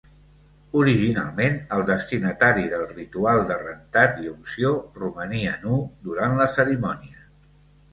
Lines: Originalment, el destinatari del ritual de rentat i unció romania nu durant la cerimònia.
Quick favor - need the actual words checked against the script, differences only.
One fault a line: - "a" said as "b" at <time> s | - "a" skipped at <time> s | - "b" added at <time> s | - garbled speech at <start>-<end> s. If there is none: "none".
none